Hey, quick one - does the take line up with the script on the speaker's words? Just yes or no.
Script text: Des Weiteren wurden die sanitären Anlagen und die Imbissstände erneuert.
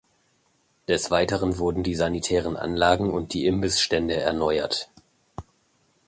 yes